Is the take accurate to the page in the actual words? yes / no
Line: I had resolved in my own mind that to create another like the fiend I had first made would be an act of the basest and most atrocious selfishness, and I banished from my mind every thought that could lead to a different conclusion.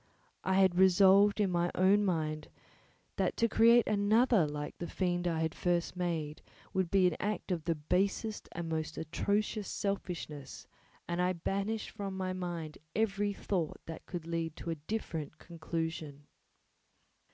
yes